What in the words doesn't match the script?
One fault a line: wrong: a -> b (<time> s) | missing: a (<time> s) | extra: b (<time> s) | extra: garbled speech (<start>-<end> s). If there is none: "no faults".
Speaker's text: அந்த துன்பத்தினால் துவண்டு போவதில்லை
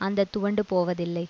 missing: துன்பத்தினால் (0.3 s)